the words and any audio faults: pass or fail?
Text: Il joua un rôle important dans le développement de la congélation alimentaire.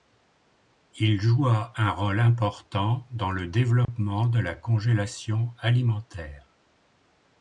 fail